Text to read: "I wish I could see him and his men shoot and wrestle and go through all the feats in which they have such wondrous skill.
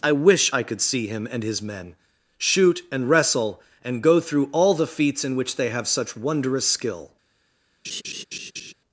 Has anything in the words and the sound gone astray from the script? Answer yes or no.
yes